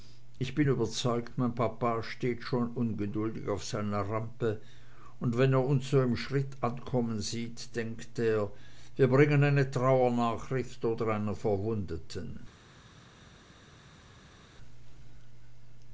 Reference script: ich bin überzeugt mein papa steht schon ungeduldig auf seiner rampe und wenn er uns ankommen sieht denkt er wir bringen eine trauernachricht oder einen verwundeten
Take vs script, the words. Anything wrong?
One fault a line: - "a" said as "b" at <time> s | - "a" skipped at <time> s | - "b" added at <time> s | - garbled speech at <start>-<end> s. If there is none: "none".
- "so im schritt" added at 5.9 s